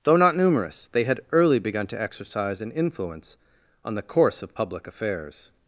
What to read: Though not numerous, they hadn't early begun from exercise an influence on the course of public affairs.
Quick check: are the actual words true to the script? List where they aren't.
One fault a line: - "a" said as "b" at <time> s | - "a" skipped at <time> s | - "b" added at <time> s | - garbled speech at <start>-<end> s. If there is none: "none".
- "hadn't" said as "had" at 1.0 s
- "from" said as "to" at 1.9 s